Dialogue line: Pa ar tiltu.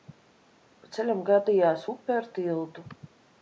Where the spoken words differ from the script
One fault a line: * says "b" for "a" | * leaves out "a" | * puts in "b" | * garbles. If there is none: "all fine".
* puts in "ceļam gadījās upe"